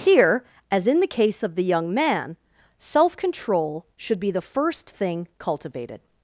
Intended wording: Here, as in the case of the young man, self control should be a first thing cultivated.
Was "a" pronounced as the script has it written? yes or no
no